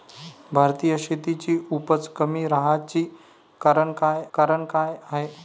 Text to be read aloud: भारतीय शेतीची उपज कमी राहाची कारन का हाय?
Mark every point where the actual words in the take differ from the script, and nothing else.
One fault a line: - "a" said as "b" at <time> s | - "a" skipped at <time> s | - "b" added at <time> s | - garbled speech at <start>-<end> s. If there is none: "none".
- "कारन का" added at 4.3 s